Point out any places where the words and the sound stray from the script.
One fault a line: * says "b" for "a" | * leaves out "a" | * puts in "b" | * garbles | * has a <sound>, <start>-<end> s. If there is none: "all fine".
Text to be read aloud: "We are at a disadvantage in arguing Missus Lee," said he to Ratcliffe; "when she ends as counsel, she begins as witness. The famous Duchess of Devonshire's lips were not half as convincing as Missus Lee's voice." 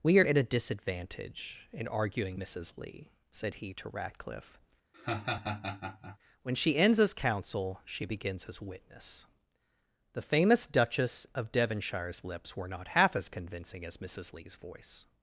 * has a laugh, 4.9-6.2 s